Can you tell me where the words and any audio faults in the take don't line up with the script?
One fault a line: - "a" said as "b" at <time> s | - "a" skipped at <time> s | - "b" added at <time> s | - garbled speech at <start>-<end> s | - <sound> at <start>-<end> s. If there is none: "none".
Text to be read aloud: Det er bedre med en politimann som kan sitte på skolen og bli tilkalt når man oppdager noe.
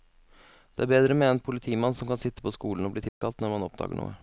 - dropout at 3.1-3.2 s